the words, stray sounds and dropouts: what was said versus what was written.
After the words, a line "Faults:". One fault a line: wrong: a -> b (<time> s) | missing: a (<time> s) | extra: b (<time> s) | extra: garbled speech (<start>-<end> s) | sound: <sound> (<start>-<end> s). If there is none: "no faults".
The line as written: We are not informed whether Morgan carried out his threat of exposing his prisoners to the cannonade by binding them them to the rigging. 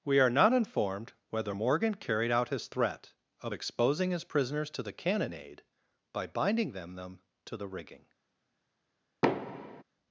We are not informed whether Morgan carried out his threat of exposing his prisoners to the cannonade by binding them them to the rigging.
Faults:
sound: thud (9.2-9.8 s)